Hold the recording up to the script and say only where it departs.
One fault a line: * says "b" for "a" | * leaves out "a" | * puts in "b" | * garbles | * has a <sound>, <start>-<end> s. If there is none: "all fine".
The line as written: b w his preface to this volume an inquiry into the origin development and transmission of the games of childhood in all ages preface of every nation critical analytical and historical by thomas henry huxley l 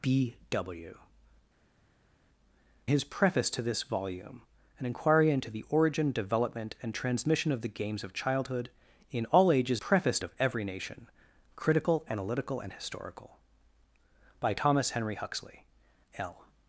all fine